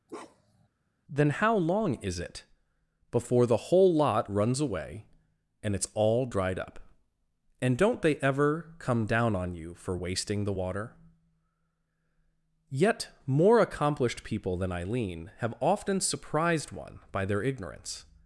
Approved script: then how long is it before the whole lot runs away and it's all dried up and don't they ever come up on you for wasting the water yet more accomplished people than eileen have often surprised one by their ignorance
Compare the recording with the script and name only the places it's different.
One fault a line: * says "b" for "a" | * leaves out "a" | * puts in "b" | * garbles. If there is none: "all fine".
* says "down" for "up"